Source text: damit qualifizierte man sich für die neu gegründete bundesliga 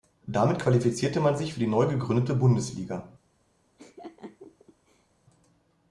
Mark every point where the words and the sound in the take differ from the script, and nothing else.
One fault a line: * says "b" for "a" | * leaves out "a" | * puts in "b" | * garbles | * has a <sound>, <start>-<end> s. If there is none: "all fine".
* has a laugh, 3.8-5.1 s